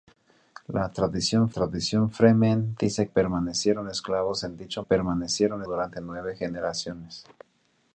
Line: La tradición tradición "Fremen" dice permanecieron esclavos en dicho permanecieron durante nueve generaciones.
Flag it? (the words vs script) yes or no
no